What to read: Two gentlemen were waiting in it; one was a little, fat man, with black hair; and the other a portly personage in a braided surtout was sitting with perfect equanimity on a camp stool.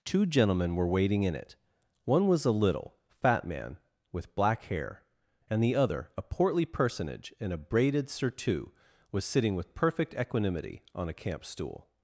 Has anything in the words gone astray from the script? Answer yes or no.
no